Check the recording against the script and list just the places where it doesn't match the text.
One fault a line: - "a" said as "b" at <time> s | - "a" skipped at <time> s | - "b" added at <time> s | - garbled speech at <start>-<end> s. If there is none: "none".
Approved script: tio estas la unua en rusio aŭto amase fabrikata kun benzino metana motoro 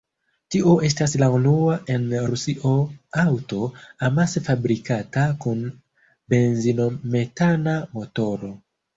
none